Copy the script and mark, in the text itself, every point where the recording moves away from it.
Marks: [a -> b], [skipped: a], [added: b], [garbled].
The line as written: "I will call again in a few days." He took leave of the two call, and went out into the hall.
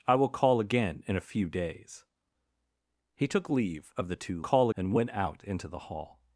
"I will call again in a few days." He took leave of the two call, and went out into the hall.